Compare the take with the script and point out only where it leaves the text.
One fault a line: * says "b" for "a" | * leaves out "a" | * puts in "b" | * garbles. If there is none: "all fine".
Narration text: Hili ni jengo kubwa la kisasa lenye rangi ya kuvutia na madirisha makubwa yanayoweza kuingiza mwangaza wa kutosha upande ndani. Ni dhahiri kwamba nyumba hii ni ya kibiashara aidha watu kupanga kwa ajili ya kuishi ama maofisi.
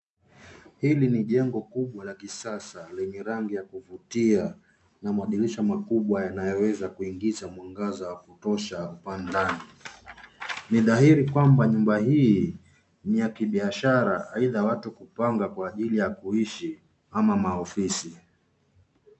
all fine